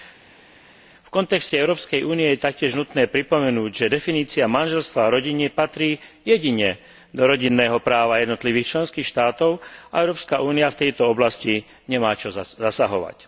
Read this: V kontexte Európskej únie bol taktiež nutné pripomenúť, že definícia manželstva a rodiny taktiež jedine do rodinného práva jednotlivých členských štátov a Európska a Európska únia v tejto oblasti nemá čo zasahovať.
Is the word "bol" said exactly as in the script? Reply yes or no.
no